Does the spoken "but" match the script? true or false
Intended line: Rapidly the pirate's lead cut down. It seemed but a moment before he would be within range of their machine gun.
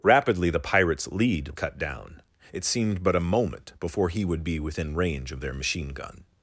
true